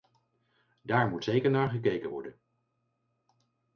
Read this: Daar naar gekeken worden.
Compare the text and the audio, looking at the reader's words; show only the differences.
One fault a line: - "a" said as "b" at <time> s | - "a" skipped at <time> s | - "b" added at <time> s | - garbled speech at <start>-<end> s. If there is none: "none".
- "moet zeker" added at 1.1 s